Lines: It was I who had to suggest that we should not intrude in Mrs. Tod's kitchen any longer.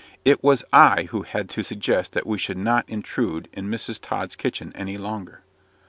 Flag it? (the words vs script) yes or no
no